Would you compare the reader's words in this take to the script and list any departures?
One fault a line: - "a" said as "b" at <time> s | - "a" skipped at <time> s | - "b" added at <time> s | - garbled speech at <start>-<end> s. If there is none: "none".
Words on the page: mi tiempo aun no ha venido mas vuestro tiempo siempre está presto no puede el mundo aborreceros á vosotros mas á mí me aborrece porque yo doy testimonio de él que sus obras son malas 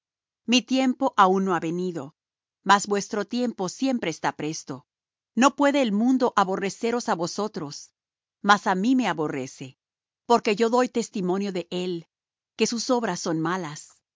none